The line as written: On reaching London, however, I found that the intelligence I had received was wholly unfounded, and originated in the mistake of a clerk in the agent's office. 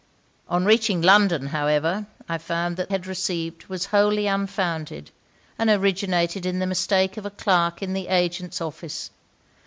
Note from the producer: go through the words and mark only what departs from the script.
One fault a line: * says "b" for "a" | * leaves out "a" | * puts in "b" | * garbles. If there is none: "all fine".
* leaves out "the intelligence I"